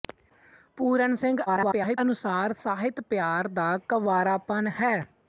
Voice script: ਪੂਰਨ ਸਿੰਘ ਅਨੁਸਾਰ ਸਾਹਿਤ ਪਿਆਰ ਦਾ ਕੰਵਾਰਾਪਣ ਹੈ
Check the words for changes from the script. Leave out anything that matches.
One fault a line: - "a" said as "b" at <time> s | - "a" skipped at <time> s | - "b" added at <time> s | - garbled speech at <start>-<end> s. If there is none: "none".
- garbled speech at 1.5-2.0 s